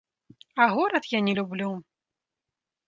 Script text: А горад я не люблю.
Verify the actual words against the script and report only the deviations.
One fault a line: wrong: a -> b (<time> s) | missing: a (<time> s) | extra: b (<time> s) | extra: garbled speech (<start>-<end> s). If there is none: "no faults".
no faults